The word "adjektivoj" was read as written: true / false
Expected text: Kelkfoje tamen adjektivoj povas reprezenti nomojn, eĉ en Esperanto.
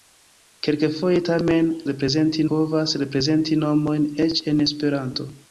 false